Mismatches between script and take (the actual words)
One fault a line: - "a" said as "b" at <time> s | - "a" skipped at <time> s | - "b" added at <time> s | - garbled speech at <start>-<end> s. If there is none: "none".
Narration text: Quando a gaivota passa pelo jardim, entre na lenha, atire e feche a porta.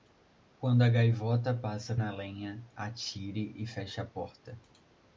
- "pelo jardim entre" skipped at 1.9 s